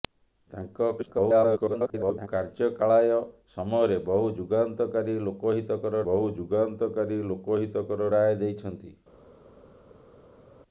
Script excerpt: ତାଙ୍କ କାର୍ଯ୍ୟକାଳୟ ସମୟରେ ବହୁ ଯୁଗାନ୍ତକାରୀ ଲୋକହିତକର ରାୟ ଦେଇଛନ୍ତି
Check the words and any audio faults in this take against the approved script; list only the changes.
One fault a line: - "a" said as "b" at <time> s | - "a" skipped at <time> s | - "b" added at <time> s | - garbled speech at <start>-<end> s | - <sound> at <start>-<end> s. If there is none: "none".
- garbled speech at 1.0-2.3 s
- "ବହୁ ଯୁଗାନ୍ତକାରୀ ଲୋକହିତକର" added at 6.1 s